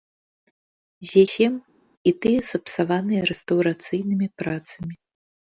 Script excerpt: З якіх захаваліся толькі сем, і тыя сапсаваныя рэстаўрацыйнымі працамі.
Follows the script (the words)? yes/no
no